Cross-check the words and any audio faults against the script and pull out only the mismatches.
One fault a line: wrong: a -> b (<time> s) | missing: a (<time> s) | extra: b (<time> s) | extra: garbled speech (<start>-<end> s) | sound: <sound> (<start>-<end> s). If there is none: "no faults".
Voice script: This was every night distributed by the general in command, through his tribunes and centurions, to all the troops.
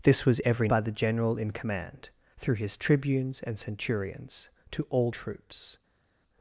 missing: night distributed (0.7 s)
missing: the (5.1 s)